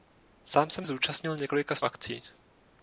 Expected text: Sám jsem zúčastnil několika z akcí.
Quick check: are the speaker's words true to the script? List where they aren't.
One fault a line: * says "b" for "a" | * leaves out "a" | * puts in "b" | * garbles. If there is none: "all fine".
all fine